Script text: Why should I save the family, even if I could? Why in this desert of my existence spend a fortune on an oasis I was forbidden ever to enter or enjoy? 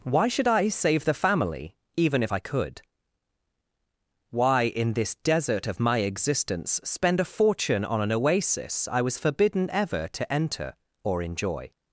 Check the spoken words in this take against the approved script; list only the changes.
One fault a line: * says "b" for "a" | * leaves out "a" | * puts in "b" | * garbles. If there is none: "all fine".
all fine